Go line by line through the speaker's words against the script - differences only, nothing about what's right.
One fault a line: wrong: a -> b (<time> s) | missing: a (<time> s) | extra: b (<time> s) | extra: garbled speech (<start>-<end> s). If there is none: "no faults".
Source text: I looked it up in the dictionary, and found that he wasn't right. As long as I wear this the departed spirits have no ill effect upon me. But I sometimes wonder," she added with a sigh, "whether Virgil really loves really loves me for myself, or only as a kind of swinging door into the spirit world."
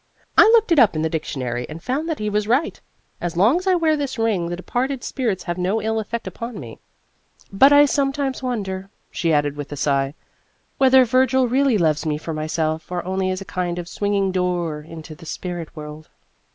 wrong: wasn't -> was (2.3 s)
extra: ring (4.2 s)
missing: really loves (12.1 s)